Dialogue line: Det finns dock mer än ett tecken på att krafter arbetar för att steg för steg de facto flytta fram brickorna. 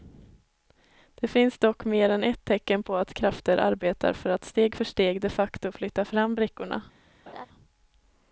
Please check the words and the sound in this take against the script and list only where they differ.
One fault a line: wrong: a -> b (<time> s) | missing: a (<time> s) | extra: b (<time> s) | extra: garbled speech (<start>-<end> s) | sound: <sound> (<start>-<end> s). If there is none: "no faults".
sound: laugh (7.3-7.5 s)